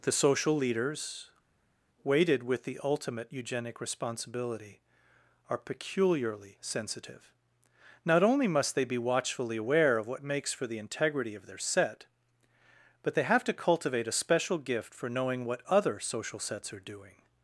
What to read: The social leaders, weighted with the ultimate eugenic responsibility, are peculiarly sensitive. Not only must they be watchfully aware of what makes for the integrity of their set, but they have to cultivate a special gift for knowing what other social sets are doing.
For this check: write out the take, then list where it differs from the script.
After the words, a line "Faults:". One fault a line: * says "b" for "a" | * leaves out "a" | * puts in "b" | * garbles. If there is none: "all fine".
The social leaders, weighted with the ultimate eugenic responsibility, are peculiarly sensitive. Not only must they be watchfully aware of what makes for the integrity of their set, but they have to cultivate a special gift for knowing what other social sets are doing.
Faults:
all fine